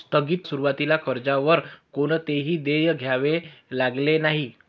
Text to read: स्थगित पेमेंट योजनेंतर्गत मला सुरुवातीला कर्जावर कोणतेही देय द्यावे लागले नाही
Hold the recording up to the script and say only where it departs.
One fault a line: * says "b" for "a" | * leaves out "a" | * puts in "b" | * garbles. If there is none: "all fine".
* leaves out "पेमेंट योजनेंतर्गत मला"